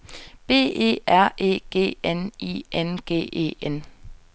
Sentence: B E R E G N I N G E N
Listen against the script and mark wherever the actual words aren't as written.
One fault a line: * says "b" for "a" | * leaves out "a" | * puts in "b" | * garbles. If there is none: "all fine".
all fine